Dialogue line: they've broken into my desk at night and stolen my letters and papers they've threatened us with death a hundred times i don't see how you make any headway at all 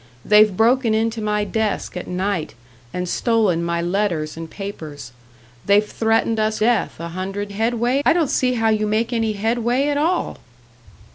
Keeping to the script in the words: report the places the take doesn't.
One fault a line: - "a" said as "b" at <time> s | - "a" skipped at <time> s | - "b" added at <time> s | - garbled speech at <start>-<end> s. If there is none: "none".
- "with" skipped at 6.6 s
- "times" said as "headway" at 7.5 s